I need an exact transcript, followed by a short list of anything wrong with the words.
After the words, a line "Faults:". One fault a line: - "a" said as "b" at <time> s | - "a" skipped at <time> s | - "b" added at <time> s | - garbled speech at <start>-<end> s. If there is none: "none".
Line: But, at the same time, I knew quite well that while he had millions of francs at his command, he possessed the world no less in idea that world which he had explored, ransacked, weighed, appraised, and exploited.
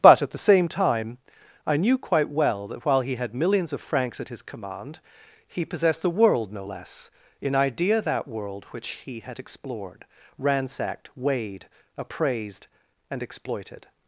But, at the same time, I knew quite well that while he had millions of francs at his command, he possessed the world no less in idea that world which he had explored, ransacked, weighed, appraised, and exploited.
Faults:
none